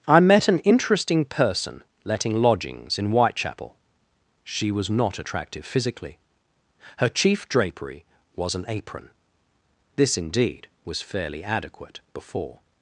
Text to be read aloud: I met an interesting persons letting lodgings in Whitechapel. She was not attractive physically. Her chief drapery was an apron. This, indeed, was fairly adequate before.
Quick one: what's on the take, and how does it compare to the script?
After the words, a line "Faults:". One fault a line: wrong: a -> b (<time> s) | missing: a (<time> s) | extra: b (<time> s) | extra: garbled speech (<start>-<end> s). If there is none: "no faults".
I met an interesting person letting lodgings in Whitechapel. She was not attractive physically. Her chief drapery was an apron. This, indeed, was fairly adequate before.
Faults:
wrong: persons -> person (1.2 s)